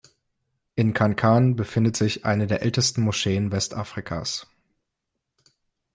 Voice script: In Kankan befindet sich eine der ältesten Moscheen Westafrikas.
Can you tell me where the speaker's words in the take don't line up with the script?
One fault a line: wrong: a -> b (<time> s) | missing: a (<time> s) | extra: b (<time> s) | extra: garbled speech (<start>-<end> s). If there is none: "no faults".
no faults